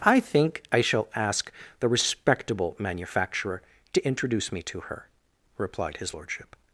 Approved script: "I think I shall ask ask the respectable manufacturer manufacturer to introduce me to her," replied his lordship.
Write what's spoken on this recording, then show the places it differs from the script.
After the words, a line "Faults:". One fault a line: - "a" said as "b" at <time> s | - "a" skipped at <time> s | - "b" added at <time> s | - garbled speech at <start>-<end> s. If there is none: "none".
"I think I shall ask the respectable manufacturer to introduce me to her," replied his lordship.
Faults:
- "ask" skipped at 1.5 s
- "manufacturer" skipped at 3.6 s